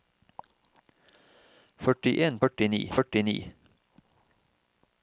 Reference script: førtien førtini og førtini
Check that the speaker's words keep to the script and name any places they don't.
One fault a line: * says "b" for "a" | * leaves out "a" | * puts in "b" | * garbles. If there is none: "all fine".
all fine